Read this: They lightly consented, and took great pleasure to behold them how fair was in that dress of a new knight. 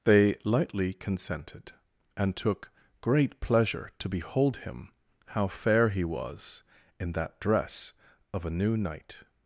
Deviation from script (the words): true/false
true